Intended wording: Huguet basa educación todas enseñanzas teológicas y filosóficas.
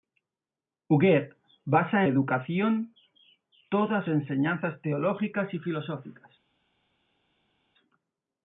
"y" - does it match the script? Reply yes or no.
yes